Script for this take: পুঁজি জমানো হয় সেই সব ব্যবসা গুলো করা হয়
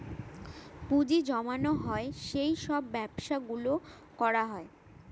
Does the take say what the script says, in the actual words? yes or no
yes